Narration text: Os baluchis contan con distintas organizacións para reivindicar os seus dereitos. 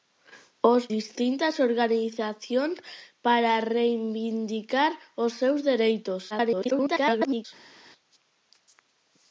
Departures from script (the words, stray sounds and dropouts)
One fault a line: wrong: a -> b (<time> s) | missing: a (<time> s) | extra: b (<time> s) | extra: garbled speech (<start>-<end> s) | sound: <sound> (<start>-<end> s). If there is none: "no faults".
missing: baluchis contan con (0.8 s)
extra: garbled speech (6.3-7.5 s)